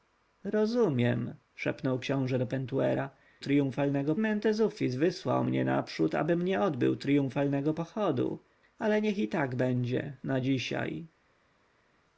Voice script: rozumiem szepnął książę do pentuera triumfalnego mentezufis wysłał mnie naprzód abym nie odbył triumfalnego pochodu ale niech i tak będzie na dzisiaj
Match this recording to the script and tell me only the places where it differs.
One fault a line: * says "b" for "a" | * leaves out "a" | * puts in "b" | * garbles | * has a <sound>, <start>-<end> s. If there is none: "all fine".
all fine